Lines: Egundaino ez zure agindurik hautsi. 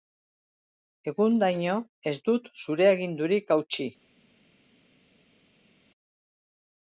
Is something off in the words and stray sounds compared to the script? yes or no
yes